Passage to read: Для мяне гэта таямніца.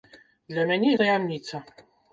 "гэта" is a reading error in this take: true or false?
true